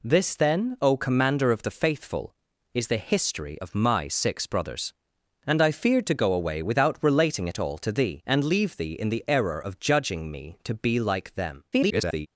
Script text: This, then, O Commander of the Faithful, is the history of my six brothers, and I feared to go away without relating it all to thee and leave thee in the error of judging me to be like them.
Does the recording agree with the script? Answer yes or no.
no